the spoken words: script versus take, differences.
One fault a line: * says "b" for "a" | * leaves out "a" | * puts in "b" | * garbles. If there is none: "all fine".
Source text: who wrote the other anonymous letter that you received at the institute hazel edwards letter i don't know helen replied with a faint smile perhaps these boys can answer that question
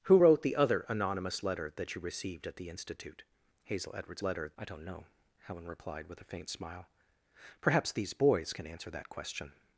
all fine